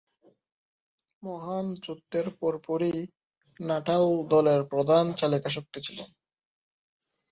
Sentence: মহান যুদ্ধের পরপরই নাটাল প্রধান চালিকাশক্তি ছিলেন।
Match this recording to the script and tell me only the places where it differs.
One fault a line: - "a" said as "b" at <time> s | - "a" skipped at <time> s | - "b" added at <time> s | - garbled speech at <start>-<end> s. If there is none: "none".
- "দলের" added at 4.3 s